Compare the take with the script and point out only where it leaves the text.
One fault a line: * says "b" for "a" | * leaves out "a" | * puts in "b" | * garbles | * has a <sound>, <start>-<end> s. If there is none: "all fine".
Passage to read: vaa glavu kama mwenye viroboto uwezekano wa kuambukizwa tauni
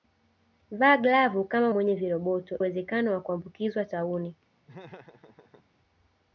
* has a laugh, 4.7-5.7 s